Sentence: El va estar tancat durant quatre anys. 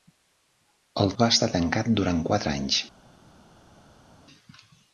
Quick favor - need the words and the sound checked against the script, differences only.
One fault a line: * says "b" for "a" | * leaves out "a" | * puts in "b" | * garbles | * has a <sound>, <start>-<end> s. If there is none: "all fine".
all fine